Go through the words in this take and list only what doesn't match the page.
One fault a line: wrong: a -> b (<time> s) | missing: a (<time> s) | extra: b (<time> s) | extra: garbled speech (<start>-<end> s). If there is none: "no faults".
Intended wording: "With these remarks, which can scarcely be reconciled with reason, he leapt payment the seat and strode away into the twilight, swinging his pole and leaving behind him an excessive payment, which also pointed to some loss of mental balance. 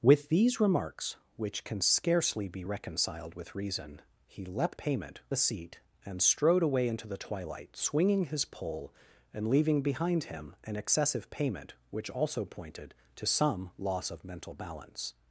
no faults